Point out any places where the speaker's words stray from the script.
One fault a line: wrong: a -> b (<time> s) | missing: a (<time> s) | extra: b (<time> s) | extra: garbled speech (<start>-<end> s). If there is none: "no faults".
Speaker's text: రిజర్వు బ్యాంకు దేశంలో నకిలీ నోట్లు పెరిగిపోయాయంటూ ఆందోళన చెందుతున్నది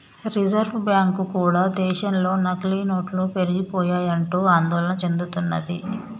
extra: కూడా (1.3 s)